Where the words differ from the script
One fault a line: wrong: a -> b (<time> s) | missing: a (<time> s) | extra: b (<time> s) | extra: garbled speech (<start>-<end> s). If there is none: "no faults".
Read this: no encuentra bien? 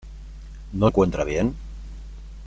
no faults